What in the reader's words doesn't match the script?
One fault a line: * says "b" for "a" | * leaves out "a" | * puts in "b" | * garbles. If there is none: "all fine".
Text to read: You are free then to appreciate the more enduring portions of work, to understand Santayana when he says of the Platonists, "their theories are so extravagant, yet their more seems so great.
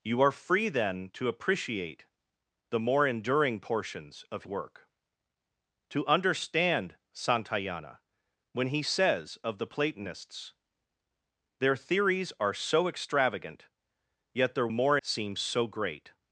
all fine